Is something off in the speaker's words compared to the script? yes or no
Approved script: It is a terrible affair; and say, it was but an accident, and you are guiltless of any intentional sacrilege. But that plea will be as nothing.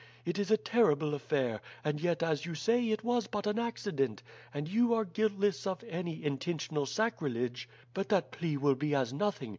yes